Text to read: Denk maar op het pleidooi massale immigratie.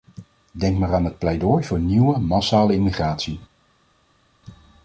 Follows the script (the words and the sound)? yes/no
no